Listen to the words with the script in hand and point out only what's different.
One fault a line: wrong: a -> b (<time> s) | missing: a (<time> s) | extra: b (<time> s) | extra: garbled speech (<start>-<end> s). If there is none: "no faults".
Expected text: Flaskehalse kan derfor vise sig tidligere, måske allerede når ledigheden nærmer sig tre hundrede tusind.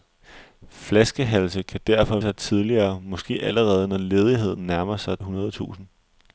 missing: vise (2.2 s)
missing: tre (5.2 s)